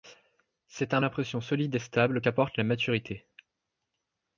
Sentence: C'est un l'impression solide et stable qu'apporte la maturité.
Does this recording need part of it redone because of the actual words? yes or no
no